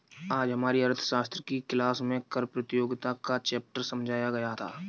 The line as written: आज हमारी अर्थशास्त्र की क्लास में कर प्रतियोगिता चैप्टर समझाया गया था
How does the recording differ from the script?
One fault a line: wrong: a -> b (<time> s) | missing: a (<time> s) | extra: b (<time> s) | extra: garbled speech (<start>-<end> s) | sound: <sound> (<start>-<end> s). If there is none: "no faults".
extra: का (3.2 s)